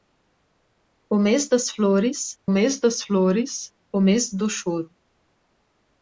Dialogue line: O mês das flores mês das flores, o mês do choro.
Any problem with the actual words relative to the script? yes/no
no